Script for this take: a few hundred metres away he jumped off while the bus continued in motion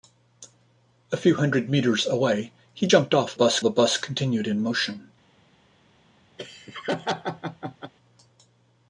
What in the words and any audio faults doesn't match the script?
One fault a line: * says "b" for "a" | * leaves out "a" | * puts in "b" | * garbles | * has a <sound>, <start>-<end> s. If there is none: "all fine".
* says "bus" for "while"
* has a laugh, 6.4-7.9 s